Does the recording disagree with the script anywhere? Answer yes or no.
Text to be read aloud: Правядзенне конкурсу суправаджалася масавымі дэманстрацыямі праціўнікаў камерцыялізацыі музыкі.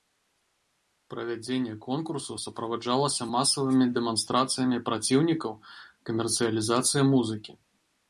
no